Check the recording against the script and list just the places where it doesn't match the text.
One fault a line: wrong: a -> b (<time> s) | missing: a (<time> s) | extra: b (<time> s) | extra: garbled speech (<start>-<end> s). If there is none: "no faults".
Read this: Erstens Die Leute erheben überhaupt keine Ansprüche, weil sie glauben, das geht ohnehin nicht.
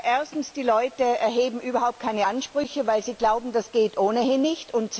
no faults